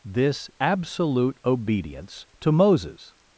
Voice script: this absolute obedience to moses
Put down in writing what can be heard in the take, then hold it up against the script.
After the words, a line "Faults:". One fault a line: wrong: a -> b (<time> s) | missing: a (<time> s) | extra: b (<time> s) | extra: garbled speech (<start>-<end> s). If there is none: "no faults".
this absolute obedience to moses
Faults:
no faults